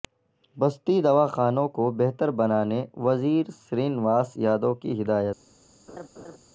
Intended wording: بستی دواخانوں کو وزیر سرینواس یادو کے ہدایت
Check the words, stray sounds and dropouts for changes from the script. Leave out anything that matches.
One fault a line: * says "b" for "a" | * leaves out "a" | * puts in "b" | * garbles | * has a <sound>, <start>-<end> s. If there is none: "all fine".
* puts in "بہتر بنانے"
* says "کی" for "کے"
* has a laugh, 5.9-6.4 s